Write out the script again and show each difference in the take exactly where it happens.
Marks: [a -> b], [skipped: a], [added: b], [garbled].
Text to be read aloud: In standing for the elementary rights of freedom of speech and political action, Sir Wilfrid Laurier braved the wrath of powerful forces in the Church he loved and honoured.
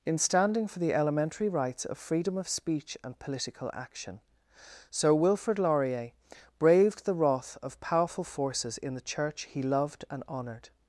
In standing for the elementary rights of freedom of speech and political action, Sir Wilfrid Laurier braved the wrath of powerful forces in the Church he loved and honoured.